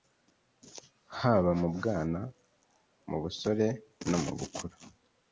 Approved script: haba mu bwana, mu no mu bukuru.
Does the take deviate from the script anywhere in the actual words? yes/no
yes